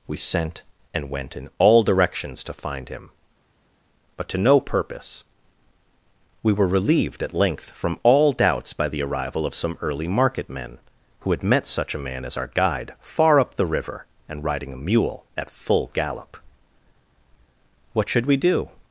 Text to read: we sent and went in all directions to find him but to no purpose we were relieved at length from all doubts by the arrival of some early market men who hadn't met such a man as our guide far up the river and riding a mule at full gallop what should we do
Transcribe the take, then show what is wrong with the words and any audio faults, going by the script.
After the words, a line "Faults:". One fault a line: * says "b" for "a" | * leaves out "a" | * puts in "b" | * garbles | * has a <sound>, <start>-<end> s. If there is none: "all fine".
we sent and went in all directions to find him but to no purpose we were relieved at length from all doubts by the arrival of some early market men who had met such a man as our guide far up the river and riding a mule at full gallop what should we do
Faults:
* says "had" for "hadn't"